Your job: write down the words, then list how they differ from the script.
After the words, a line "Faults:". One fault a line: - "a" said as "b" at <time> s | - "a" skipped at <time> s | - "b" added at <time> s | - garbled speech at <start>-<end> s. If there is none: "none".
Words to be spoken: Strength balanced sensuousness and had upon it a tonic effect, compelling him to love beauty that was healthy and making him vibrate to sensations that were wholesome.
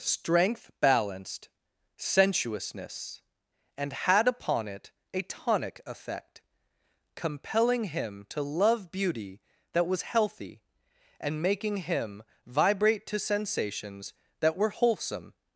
Strength balanced sensuousness and had upon it a tonic effect, compelling him to love beauty that was healthy and making him vibrate to sensations that were wholesome.
Faults:
none